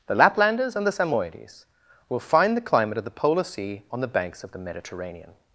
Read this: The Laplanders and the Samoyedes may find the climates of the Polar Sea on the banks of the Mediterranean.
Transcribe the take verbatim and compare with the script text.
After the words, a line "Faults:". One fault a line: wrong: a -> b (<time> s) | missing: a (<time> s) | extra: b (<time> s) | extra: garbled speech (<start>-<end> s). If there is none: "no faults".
The Laplanders and the Samoyedes will find the climate of the Polar Sea on the banks of the Mediterranean.
Faults:
wrong: may -> will (2.1 s)
wrong: climates -> climate (2.6 s)